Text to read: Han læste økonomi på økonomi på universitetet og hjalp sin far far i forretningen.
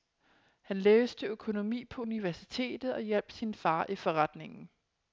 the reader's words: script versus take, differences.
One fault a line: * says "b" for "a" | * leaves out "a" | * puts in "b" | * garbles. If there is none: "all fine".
* leaves out "økonomi på"
* leaves out "far"